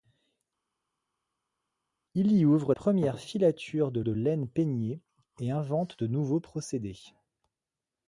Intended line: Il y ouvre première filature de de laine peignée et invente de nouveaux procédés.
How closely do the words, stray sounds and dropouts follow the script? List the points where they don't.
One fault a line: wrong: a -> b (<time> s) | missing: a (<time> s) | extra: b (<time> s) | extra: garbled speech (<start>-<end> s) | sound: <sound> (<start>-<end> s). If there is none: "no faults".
no faults